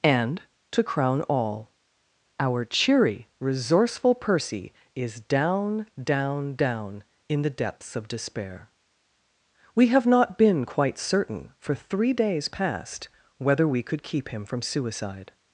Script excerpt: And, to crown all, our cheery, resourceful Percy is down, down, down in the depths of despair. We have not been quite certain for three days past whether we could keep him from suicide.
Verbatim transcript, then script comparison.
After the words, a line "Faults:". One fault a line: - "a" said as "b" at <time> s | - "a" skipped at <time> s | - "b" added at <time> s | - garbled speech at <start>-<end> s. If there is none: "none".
And, to crown all, our cheery, resourceful Percy is down, down, down in the depths of despair. We have not been quite certain for three days past whether we could keep him from suicide.
Faults:
none